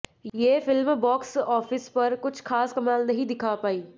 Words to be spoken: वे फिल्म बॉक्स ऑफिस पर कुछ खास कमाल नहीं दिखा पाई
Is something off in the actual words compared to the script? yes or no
yes